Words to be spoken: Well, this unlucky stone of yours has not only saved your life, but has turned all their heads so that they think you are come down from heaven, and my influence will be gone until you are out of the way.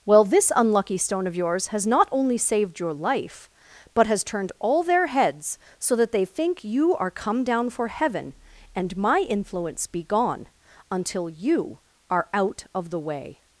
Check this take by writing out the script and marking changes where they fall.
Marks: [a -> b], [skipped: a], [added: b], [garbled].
Well, this unlucky stone of yours has not only saved your life, but has turned all their heads so that they think you are come down [from -> for] heaven, and my influence [skipped: will] be gone until you are out of the way.